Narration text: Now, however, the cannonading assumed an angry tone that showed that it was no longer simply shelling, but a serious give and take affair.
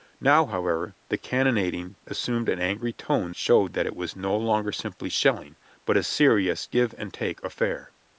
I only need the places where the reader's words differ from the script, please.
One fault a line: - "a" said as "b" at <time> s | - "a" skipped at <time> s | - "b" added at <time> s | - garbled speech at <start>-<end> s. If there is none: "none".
- "that" skipped at 3.3 s